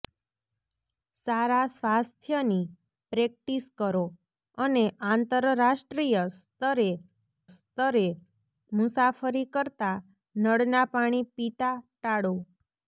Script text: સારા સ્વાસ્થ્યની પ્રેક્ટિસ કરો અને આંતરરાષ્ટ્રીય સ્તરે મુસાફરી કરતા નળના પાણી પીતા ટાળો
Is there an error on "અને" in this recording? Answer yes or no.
no